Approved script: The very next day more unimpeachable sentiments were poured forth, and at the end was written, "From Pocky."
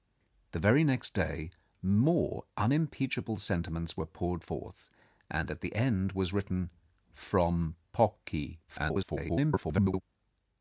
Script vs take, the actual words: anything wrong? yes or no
yes